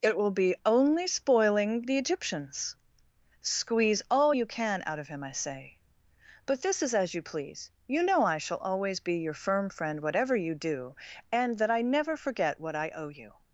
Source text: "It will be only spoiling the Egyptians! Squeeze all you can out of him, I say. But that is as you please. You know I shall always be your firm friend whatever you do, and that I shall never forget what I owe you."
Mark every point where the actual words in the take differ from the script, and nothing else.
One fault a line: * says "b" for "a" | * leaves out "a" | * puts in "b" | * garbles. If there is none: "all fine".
* says "this" for "that"
* leaves out "shall"